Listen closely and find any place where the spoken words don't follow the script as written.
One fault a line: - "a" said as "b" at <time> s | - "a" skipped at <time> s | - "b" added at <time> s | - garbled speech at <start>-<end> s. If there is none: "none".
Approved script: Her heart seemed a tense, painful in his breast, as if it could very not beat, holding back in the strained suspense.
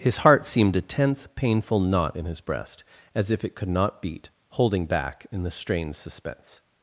- "Her" said as "His" at 0.0 s
- "knot" added at 1.8 s
- "very" skipped at 3.7 s